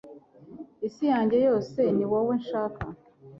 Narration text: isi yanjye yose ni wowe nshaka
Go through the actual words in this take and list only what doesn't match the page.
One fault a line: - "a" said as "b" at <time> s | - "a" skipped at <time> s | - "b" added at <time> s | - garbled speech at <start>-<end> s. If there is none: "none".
none